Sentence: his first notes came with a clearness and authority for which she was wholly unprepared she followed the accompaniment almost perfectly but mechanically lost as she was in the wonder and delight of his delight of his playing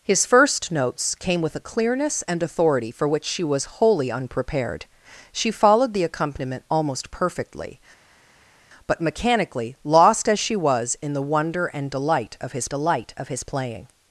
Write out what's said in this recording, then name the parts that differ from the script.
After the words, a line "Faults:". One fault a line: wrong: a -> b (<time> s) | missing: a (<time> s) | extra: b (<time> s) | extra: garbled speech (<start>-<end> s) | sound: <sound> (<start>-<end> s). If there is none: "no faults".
his first notes came with a clearness and authority for which she was wholly unprepared she followed the accompaniment almost perfectly but mechanically lost as she was in the wonder and delight of his delight of his playing
Faults:
no faults